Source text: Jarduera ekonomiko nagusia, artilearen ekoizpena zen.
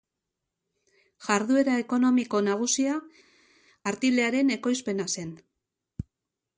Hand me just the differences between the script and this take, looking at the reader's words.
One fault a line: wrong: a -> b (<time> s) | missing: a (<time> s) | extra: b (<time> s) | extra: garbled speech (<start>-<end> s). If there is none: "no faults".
no faults